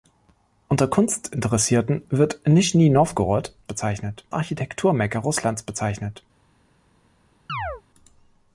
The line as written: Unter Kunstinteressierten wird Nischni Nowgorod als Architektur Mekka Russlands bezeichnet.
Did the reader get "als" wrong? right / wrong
wrong